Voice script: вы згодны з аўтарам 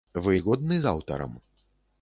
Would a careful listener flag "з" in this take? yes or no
no